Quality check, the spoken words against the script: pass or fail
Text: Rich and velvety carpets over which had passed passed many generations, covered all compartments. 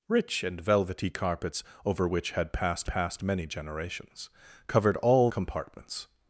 pass